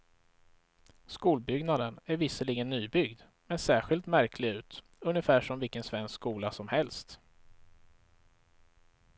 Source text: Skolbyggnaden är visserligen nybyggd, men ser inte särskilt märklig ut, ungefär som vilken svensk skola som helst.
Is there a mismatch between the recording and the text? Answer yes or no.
yes